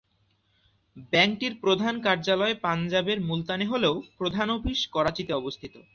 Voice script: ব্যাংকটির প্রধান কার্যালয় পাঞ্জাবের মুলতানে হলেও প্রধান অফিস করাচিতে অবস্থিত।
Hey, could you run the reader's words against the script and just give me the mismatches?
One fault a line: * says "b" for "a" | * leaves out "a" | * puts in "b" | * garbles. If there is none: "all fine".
all fine